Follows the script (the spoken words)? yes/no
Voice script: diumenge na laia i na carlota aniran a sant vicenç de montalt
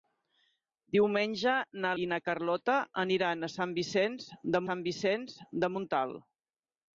no